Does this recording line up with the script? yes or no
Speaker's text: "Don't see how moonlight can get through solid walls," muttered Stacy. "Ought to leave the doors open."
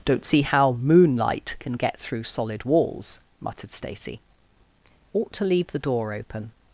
no